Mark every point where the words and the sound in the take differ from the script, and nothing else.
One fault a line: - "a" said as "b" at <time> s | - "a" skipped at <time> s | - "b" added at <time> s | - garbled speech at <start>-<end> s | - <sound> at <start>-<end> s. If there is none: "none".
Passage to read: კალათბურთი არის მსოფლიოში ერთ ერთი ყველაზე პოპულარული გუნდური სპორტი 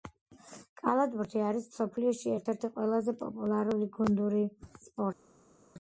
none